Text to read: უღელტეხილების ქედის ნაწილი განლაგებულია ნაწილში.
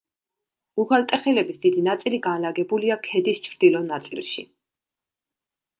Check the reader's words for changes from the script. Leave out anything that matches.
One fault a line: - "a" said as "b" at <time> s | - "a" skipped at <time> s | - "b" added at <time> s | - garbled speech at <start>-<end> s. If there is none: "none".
- "ქედის" said as "დიდი" at 1.6 s
- "ქედის ჩრდილო" added at 3.1 s